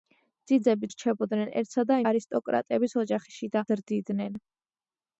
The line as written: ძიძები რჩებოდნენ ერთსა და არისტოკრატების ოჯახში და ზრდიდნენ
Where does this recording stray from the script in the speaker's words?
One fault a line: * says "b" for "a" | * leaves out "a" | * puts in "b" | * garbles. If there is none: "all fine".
all fine